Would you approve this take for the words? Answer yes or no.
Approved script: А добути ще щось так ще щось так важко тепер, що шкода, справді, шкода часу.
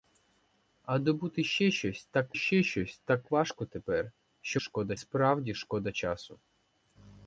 yes